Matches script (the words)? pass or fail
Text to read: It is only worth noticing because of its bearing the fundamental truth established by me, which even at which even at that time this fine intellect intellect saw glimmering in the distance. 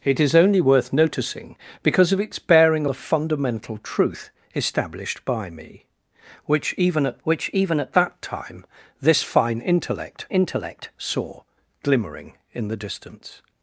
pass